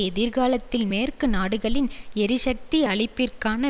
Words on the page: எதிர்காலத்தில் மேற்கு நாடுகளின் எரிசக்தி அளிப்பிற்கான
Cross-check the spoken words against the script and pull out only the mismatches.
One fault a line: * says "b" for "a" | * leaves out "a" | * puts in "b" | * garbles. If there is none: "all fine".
all fine